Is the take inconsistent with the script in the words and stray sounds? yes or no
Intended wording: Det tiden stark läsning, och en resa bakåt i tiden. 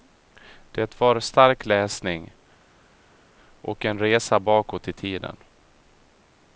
yes